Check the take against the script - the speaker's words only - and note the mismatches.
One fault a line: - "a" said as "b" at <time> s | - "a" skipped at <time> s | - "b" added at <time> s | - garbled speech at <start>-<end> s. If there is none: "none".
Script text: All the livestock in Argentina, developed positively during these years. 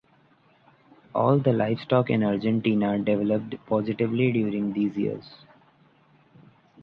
none